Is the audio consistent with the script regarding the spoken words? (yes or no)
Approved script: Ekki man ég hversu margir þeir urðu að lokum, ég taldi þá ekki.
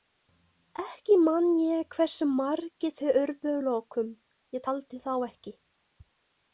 yes